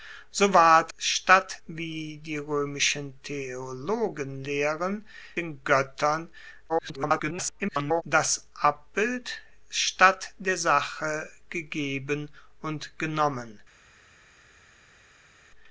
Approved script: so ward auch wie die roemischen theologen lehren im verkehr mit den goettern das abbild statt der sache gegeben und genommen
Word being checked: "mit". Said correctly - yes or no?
no